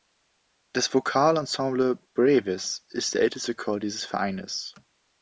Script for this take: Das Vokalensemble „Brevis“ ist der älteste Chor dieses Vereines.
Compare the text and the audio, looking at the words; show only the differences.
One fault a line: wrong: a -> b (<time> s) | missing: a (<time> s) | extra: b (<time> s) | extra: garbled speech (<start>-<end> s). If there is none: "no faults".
no faults